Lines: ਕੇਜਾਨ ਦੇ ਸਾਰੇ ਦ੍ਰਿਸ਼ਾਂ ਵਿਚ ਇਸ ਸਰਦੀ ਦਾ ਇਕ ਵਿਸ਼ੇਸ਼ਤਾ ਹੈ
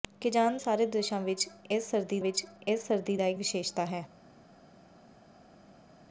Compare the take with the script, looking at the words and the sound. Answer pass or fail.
fail